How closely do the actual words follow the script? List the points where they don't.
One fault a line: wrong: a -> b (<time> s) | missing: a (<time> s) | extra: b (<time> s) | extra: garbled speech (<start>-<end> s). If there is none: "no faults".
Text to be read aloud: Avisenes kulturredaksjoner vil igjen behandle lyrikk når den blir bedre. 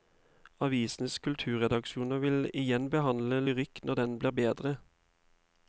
no faults